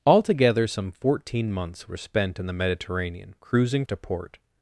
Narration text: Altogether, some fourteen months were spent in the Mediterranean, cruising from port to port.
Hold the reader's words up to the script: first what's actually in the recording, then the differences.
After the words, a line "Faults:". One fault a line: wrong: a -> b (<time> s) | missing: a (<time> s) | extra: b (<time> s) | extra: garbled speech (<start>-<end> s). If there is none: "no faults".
Altogether, some fourteen months were spent in the Mediterranean, cruising to port.
Faults:
missing: from port (3.9 s)